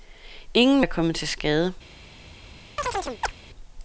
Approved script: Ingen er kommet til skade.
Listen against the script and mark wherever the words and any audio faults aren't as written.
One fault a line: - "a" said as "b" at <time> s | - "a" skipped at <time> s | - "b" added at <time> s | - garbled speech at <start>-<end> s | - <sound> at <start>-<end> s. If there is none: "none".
- chirp at 2.8-3.3 s